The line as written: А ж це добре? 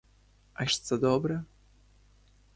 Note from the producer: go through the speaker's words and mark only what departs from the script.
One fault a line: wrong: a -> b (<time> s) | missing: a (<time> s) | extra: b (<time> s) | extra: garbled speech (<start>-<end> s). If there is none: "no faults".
no faults